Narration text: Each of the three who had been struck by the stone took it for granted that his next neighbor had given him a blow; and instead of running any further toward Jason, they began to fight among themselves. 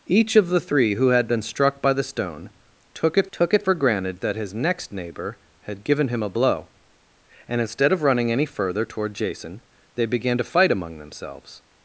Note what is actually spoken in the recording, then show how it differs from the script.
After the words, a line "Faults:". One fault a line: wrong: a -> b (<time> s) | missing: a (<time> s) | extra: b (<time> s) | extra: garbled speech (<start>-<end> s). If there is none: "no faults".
Each of the three who had been struck by the stone took it took it for granted that his next neighbor had given him a blow; and instead of running any further toward Jason, they began to fight among themselves.
Faults:
extra: took it (3.3 s)